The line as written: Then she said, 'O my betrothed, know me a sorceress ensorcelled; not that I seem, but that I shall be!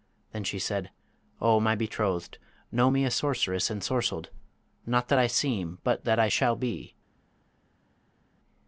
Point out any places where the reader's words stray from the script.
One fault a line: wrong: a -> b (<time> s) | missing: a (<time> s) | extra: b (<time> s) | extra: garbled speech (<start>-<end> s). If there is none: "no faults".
no faults